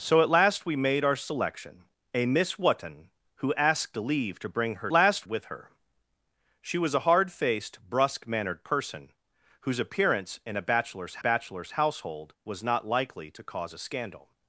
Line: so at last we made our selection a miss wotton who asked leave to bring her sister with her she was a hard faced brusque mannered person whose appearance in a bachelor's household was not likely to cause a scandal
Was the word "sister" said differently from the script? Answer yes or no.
yes